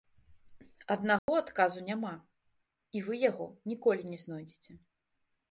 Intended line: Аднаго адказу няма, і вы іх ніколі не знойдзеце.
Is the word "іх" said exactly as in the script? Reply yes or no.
no